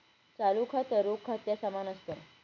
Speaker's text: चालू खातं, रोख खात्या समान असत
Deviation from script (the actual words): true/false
false